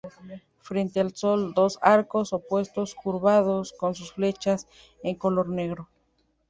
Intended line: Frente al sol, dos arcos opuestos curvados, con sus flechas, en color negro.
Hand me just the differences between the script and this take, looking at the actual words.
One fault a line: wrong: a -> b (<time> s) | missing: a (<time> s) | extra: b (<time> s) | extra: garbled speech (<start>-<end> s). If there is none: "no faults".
no faults